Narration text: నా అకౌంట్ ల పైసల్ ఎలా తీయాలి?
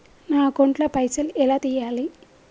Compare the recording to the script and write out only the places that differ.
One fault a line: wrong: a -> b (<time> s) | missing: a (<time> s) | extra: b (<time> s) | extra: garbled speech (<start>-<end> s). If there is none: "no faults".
no faults